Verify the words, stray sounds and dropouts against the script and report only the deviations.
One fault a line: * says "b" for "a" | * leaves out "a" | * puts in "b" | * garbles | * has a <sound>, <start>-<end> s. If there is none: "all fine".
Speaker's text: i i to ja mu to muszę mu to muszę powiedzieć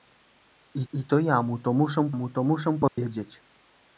* has a dropout, 2.9-3.0 s